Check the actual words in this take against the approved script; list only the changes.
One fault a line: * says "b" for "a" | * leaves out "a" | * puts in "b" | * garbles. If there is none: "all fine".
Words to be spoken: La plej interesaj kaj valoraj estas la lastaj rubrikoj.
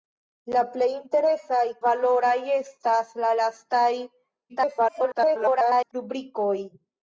* leaves out "kaj"
* garbles